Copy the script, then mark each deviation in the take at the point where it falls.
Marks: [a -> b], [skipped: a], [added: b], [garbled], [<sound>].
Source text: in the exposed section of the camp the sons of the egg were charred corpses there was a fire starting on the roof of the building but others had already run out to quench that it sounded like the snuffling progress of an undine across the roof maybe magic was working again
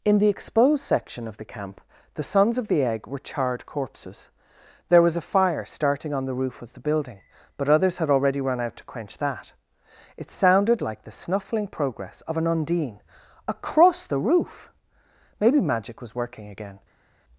in the exposed section of the camp the sons of the egg were charred corpses there was a fire starting on the roof of the building but others had already run out to quench that it sounded like the snuffling progress of an undine across the roof maybe magic was working again